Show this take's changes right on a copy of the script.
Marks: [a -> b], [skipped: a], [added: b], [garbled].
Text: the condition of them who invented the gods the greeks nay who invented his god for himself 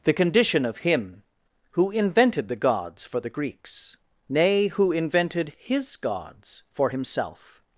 the condition of [them -> him] who invented the gods [added: for] the greeks nay who invented his [god -> gods] for himself